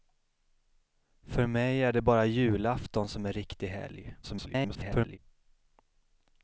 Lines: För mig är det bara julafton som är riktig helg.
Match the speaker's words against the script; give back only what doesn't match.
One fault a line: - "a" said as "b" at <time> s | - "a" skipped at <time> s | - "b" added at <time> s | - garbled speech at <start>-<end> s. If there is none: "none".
- garbled speech at 4.2-5.2 s